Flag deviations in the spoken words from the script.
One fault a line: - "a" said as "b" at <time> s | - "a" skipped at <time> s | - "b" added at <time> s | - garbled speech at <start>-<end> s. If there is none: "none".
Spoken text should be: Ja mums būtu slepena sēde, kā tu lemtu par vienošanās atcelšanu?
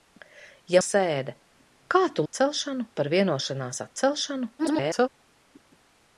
- "mums būtu slepena" skipped at 0.8 s
- "lemtu" said as "atcelšanu" at 2.2 s
- garbled speech at 4.6-5.1 s